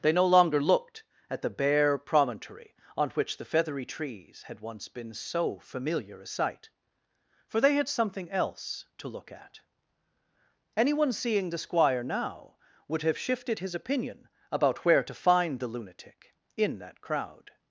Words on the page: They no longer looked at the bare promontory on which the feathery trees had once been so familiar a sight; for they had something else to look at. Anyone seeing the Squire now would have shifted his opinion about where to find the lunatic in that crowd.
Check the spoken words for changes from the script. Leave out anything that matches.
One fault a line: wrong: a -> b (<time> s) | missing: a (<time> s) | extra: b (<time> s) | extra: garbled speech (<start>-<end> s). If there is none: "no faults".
no faults